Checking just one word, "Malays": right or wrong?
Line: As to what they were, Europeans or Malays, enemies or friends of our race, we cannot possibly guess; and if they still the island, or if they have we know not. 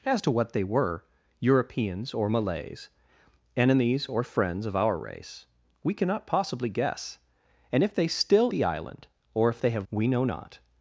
right